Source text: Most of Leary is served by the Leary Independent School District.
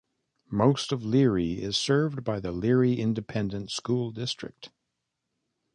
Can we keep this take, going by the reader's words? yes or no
yes